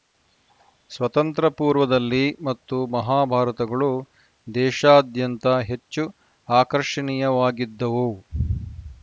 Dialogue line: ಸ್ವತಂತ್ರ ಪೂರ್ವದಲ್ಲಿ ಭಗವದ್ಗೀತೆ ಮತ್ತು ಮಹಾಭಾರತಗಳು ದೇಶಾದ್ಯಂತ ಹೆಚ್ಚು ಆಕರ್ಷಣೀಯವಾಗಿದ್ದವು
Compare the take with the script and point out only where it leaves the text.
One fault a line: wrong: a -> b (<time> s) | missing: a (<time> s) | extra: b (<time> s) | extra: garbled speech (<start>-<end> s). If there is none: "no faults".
missing: ಭಗವದ್ಗೀತೆ (2.2 s)